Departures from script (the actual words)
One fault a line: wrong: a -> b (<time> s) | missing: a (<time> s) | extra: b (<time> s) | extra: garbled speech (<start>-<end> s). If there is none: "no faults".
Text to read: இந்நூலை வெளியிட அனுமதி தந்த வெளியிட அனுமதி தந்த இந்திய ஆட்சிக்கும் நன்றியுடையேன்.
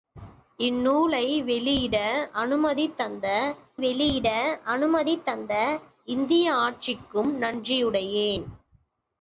no faults